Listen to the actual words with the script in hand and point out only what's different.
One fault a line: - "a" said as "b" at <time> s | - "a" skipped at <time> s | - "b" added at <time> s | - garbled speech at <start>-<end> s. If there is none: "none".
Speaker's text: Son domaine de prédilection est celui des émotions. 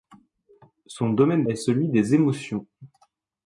- "de prédilection" skipped at 1.4 s